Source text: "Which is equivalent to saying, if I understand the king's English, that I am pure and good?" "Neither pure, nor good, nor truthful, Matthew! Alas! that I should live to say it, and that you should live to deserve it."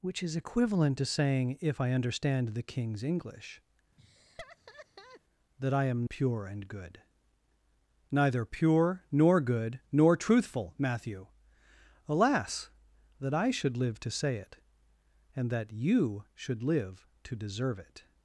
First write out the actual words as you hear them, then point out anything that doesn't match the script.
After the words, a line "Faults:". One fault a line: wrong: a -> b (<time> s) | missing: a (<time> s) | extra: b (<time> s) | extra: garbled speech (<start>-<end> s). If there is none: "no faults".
"Which is equivalent to saying, if I understand the king's English, that I am pure and good?" "Neither pure, nor good, nor truthful, Matthew! Alas! that I should live to say it, and that you should live to deserve it."
Faults:
no faults